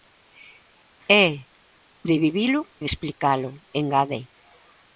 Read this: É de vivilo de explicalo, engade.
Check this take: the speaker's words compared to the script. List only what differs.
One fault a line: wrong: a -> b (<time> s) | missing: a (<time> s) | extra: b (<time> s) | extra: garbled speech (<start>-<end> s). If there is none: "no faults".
no faults